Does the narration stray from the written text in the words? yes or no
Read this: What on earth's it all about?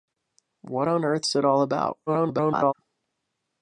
yes